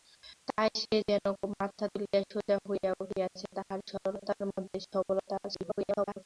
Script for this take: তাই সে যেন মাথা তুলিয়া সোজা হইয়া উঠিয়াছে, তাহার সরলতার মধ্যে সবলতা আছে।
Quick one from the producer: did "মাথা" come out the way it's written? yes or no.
yes